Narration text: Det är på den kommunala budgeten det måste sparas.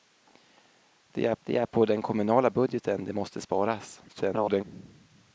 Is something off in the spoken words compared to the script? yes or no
yes